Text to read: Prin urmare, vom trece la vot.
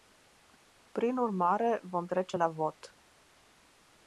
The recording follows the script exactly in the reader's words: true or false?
true